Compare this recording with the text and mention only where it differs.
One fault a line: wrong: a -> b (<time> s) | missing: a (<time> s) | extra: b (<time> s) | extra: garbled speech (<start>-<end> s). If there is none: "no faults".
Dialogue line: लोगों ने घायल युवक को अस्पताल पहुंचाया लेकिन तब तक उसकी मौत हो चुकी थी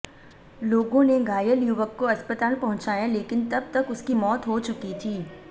no faults